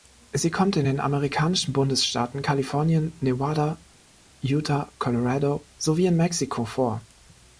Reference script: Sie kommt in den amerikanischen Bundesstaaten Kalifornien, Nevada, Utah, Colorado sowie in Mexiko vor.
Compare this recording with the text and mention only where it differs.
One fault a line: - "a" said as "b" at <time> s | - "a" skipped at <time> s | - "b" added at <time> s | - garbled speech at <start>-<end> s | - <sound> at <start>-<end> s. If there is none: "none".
none